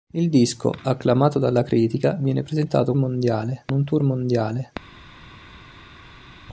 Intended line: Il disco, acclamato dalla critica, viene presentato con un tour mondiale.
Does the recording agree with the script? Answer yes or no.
no